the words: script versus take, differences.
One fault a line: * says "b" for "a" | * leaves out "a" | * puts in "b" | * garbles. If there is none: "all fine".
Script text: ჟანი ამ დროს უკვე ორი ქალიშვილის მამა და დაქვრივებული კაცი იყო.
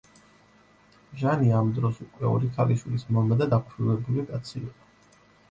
all fine